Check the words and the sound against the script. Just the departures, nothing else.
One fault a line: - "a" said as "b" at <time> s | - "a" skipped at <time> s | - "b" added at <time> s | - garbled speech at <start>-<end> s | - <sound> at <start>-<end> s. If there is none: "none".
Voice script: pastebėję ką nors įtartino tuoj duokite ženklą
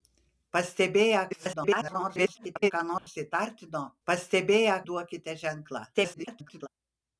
- garbled speech at 1.3-2.7 s
- dropout at 3.0-3.1 s
- "tuoj" said as "pastebėję" at 4.1 s
- garbled speech at 5.9-6.7 s